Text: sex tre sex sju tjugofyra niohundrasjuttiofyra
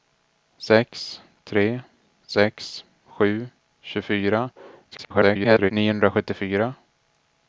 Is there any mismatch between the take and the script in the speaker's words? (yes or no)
yes